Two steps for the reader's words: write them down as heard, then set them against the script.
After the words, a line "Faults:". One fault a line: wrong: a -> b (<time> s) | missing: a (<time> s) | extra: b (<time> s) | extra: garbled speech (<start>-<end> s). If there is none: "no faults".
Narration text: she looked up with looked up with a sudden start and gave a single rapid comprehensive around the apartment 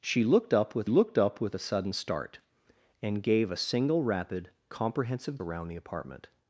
she looked up with looked up with a sudden start and gave a single rapid comprehensive around the apartment
Faults:
no faults